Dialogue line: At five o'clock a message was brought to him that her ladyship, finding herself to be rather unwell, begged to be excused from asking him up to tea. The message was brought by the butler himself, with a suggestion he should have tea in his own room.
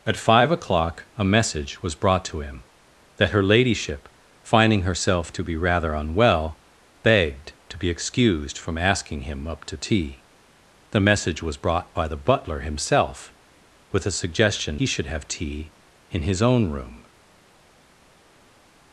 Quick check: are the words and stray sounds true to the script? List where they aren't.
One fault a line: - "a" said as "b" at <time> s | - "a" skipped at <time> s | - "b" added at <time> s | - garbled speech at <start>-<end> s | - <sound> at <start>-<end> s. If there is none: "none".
none